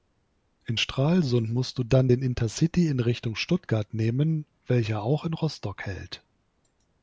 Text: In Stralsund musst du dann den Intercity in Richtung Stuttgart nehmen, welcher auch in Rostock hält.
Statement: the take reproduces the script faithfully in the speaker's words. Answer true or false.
true